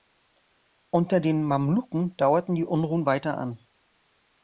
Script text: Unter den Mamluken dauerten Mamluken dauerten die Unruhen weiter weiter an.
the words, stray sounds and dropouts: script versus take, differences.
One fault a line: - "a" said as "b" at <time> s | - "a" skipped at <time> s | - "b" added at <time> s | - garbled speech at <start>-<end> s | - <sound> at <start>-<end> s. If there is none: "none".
- "Mamluken dauerten" skipped at 2.5 s
- "weiter" skipped at 3.4 s